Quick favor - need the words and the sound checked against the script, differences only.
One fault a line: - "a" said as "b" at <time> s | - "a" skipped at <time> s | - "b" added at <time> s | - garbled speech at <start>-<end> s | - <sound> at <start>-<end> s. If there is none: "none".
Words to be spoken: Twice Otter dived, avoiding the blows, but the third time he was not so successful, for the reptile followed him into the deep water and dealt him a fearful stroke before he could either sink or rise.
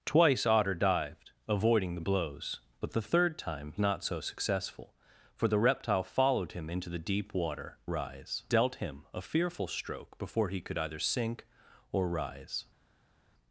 - "he was" skipped at 3.7 s
- "and" said as "rise" at 7.9 s